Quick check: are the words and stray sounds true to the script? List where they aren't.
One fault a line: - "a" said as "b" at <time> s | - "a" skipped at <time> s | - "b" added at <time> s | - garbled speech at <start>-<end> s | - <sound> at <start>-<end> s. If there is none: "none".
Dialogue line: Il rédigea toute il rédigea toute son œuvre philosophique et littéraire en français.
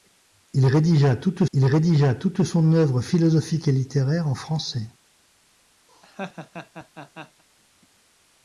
- laugh at 5.9-7.4 s